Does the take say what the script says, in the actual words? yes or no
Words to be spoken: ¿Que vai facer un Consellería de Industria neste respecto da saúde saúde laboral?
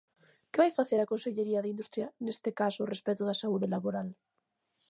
no